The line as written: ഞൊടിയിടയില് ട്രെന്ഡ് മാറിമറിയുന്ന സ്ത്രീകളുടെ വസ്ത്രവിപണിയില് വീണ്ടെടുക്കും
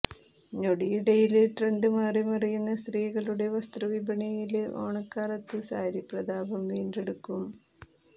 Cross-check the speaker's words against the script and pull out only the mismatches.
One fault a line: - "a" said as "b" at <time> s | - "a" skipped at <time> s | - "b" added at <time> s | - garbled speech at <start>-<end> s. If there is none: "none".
- "ഓണക്കാലത്ത് സാരി പ്രതാപം" added at 4.8 s